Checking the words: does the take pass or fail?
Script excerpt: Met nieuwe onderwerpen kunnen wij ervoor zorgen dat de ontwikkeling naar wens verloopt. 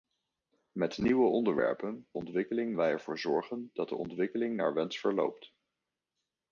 fail